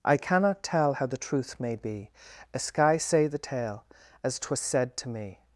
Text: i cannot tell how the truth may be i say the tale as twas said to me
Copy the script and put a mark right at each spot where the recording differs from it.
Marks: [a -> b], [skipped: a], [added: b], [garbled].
i cannot tell how the truth may be [i -> a sky] say the tale as twas said to me